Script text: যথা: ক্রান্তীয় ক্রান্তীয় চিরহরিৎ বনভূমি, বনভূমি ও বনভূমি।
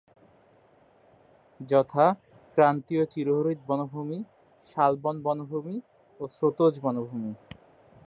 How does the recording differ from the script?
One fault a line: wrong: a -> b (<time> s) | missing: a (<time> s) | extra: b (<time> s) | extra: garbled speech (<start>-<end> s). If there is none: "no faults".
missing: ক্রান্তীয় (3.0 s)
extra: শালবন (4.7 s)
extra: স্রোতজ (6.3 s)